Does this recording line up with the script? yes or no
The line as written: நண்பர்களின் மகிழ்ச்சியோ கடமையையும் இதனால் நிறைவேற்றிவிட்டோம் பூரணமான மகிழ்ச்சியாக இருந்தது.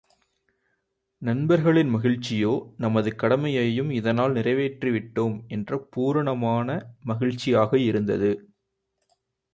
no